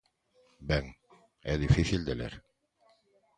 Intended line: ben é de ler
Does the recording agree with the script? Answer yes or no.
no